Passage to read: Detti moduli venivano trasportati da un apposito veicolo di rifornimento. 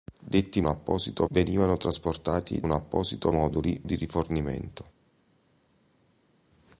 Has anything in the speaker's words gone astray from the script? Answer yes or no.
yes